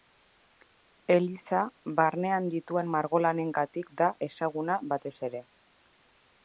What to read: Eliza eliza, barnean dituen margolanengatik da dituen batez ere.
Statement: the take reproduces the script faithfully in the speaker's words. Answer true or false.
false